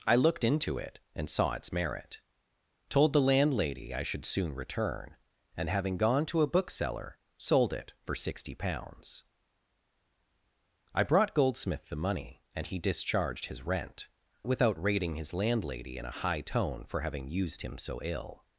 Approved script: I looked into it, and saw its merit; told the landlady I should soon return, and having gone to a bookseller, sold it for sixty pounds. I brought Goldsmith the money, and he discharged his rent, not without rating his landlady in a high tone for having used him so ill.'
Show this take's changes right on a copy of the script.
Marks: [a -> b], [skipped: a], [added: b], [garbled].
I looked into it, and saw its merit; told the landlady I should soon return, and having gone to a bookseller, sold it for sixty pounds. I brought Goldsmith the money, and he discharged his rent, [skipped: not] without rating his landlady in a high tone for having used him so ill.'